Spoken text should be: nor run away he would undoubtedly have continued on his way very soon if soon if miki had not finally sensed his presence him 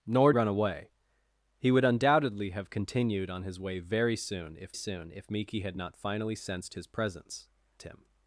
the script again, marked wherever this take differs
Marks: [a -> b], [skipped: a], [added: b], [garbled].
nor run away he would undoubtedly have continued on his way very soon if soon if miki had not finally sensed his presence him